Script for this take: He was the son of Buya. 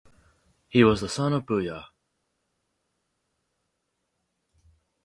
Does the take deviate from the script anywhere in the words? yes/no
no